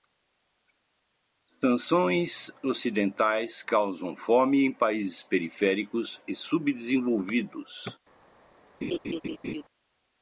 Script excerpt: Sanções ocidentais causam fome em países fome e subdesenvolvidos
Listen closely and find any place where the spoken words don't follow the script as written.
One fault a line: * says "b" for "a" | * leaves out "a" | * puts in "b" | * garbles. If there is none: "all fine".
* says "periféricos" for "fome"